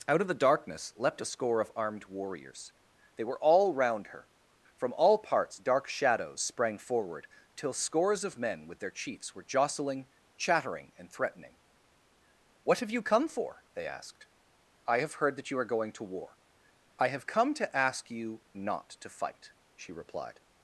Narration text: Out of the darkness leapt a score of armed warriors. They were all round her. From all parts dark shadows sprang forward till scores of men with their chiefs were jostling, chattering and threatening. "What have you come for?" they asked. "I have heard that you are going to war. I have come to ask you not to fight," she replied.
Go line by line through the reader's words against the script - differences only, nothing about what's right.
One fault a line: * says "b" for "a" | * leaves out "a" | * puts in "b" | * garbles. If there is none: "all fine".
all fine